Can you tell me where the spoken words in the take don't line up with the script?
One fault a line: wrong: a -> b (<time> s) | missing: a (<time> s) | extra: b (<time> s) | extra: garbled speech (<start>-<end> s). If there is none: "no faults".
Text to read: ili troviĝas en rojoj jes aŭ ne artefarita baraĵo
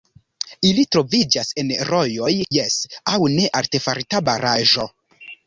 no faults